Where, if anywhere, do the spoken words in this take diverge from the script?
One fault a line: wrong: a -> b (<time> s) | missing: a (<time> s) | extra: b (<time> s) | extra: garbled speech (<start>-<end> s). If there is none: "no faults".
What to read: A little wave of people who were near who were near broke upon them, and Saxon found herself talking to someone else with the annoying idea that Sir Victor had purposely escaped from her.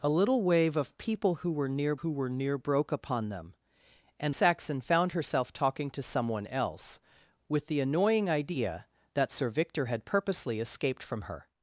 no faults